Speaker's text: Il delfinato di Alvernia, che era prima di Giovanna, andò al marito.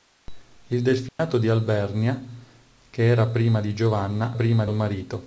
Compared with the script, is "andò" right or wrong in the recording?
wrong